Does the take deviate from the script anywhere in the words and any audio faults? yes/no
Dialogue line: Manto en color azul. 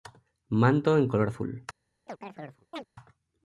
yes